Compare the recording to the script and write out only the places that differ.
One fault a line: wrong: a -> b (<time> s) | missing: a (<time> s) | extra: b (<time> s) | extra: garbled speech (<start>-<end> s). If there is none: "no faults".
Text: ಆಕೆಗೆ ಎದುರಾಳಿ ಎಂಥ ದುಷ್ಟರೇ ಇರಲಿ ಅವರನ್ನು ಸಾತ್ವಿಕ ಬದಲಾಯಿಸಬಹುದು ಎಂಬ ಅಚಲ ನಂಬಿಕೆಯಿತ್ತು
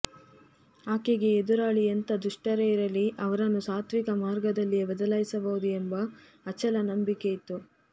extra: ಮಾರ್ಗದಲ್ಲಿಯೇ (4.2 s)